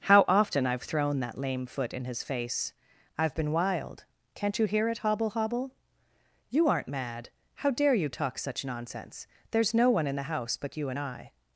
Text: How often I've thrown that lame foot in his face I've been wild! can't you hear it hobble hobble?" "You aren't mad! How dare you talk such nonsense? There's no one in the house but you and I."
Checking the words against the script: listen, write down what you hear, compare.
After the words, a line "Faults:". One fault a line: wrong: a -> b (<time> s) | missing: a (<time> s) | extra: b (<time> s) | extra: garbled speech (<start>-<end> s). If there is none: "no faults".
How often I've thrown that lame foot in his face I've been wild! can't you hear it hobble hobble?" "You aren't mad! How dare you talk such nonsense? There's no one in the house but you and I."
Faults:
no faults